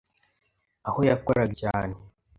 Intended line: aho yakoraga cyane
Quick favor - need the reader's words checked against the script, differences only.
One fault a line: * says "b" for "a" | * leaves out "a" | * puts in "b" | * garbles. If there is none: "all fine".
all fine